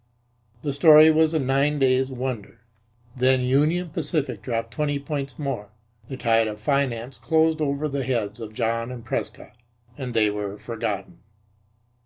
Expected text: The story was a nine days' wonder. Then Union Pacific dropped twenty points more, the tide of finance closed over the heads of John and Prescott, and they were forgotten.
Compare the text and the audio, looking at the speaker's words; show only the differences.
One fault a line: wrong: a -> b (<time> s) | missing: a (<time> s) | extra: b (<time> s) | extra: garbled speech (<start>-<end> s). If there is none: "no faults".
no faults